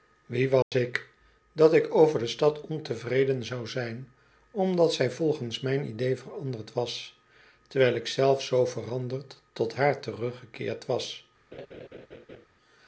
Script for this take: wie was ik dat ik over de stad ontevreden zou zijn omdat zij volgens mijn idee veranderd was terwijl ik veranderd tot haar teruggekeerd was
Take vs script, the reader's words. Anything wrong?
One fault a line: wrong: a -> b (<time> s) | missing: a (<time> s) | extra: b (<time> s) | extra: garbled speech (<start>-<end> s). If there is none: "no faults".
extra: zelf zoo (8.1 s)